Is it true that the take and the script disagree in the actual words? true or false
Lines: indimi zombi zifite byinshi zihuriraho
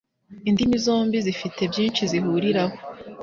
false